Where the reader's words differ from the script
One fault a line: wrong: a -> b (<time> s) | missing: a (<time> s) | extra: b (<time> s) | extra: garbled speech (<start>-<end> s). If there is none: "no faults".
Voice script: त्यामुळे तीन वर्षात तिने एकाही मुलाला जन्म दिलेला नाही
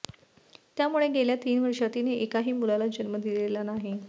extra: गेल्या (1.1 s)